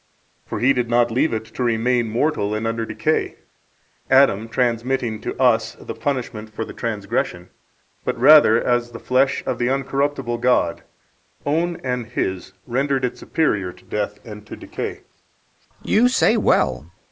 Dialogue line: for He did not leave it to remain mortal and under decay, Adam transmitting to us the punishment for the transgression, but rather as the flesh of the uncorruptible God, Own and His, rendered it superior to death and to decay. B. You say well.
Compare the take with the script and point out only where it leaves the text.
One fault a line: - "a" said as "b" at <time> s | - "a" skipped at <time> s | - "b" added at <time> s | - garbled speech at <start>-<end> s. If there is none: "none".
none